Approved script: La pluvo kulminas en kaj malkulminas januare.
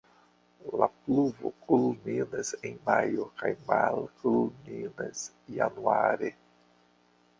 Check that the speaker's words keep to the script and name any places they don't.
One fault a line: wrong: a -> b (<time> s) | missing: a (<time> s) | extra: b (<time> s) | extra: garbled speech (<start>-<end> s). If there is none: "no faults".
extra: majo (2.9 s)